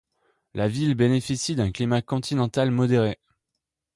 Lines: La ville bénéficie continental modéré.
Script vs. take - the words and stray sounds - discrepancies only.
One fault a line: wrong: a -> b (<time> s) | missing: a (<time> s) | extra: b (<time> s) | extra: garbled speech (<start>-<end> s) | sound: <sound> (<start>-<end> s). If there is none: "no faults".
extra: d'un climat (1.6 s)